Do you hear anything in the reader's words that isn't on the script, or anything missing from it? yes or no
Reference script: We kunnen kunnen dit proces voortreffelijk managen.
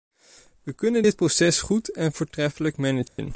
yes